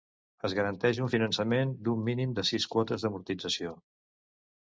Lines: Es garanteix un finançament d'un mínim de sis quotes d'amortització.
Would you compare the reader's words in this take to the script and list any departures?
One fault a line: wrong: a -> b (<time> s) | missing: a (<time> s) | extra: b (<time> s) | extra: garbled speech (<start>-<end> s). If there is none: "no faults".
no faults